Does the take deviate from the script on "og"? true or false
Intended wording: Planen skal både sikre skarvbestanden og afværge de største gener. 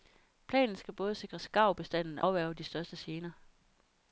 true